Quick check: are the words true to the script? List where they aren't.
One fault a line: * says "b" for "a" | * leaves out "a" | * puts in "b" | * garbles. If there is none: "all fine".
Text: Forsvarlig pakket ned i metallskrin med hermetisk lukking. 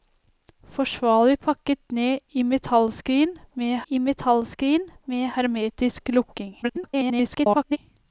* puts in "i metallskrin med"
* garbles